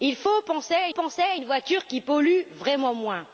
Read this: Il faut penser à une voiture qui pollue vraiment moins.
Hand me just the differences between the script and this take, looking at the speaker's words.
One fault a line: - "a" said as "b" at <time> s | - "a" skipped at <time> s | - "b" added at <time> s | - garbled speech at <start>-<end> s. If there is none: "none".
- "penser à" added at 1.0 s